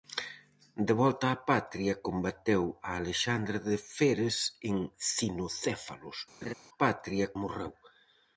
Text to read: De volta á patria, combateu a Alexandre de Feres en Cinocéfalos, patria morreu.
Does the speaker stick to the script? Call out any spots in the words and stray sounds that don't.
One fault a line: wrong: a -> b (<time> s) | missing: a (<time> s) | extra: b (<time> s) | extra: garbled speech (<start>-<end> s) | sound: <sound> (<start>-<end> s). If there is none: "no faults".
sound: laugh (6.4-6.5 s)